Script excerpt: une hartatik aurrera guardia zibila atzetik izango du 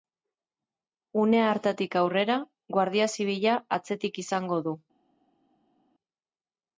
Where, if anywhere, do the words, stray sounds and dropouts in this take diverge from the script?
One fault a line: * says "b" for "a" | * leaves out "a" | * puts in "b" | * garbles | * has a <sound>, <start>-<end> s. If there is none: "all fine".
all fine